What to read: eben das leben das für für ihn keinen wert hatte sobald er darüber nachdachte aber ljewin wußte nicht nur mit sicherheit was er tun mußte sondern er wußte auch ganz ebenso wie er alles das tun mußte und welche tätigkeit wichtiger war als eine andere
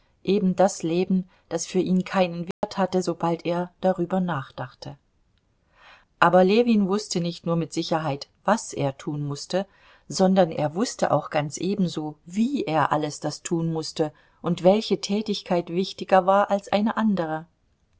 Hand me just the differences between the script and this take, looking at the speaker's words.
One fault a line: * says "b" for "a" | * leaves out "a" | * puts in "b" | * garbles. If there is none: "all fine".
* leaves out "für"